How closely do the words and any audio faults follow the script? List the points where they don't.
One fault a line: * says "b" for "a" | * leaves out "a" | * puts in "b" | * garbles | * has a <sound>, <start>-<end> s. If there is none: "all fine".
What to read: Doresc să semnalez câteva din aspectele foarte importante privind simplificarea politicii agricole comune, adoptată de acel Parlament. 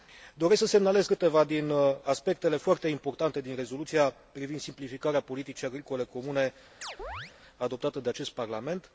* puts in "din Rezoluția"
* has a chirp, 6.8-7.3 s
* says "acest" for "acel"